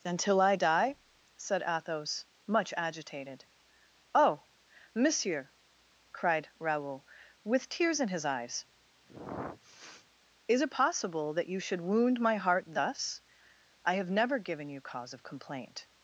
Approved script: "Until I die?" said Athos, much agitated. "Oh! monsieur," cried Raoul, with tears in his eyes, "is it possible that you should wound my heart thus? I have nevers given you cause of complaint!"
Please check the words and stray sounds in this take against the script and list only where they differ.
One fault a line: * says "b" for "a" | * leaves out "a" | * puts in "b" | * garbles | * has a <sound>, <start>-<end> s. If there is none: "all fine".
* has a sniff, 9.1-10.0 s
* says "never" for "nevers"